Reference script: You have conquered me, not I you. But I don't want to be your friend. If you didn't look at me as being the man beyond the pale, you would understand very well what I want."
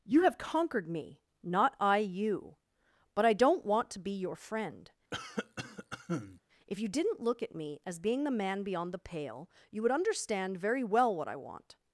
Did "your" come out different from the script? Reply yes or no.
no